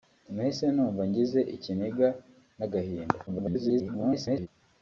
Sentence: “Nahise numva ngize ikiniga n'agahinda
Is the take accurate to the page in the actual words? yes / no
no